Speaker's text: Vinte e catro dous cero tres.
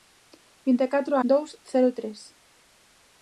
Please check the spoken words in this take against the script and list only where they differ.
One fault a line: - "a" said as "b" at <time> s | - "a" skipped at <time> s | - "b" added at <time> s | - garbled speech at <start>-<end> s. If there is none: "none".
none